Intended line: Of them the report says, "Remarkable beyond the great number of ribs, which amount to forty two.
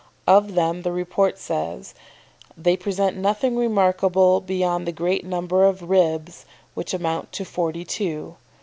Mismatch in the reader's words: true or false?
true